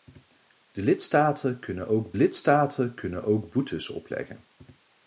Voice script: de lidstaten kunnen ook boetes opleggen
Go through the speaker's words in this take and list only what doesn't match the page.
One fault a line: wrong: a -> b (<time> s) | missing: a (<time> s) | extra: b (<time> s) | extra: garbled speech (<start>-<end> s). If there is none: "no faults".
extra: lidstaten kunnen ook (2.1 s)